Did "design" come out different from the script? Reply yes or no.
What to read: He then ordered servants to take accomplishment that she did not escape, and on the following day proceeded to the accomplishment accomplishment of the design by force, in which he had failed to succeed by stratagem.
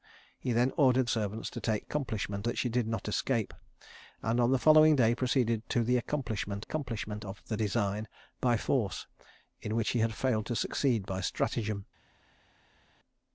no